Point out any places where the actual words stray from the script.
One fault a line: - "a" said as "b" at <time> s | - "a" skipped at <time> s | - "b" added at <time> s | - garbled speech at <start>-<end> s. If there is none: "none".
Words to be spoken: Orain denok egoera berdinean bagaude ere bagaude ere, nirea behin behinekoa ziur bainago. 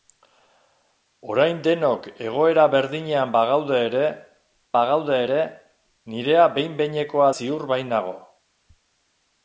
none